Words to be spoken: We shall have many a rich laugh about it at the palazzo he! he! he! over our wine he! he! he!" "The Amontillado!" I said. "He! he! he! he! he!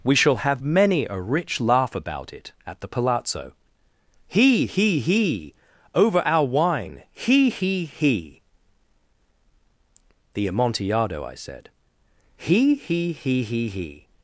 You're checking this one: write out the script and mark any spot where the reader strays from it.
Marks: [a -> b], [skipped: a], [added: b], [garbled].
We shall have many a rich laugh about it at the palazzo he! he! he! over our wine he! he! he!" "The Amontillado!" I said. "He! he! he! he! he!